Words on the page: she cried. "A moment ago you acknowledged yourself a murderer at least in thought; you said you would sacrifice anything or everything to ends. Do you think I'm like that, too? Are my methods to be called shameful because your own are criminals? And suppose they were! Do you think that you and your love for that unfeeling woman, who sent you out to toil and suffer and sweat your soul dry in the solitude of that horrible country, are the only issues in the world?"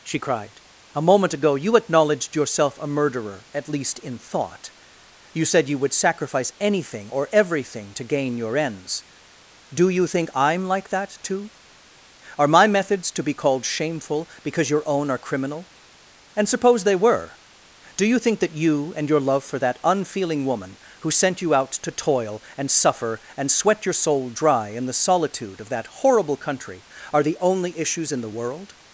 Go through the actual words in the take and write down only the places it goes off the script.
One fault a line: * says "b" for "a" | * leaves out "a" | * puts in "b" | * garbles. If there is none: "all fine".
* puts in "gain your"
* says "criminal" for "criminals"